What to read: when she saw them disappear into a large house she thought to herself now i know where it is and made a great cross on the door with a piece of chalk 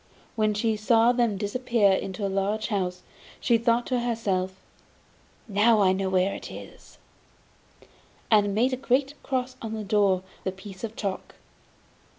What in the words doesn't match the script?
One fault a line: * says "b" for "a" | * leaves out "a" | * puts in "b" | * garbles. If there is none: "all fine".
* leaves out "with"